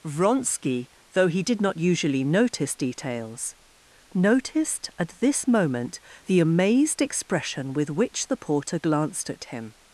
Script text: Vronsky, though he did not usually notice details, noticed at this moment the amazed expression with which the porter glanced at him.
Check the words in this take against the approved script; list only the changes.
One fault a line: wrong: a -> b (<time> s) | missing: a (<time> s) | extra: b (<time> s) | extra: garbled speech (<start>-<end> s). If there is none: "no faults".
no faults